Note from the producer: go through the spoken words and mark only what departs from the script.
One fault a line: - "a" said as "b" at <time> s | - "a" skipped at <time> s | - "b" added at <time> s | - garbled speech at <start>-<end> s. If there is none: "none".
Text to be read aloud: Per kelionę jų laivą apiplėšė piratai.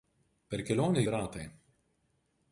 - "jų laivą apiplėšė" skipped at 1.0 s